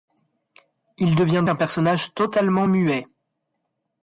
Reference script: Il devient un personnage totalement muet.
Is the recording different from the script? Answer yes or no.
no